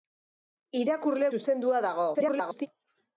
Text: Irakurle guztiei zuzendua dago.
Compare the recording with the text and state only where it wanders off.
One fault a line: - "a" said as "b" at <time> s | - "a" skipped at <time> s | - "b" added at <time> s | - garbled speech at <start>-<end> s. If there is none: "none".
- "guztiei" skipped at 1.3 s
- garbled speech at 2.1-2.7 s